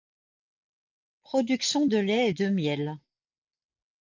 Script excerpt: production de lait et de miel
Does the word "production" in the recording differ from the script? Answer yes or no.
no